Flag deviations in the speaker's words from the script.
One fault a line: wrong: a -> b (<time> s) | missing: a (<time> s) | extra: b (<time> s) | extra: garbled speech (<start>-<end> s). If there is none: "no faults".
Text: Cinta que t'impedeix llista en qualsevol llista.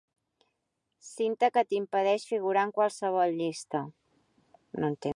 wrong: llista -> figurar (2.3 s)